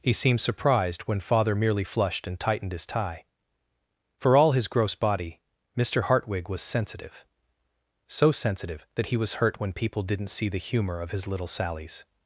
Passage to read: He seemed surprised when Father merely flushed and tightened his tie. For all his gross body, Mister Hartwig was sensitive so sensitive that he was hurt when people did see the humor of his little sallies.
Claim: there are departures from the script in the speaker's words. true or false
true